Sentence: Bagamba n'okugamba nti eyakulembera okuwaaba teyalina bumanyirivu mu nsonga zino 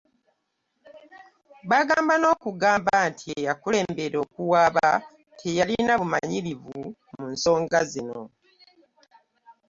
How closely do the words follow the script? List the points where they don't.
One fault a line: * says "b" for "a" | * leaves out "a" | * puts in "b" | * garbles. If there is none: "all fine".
all fine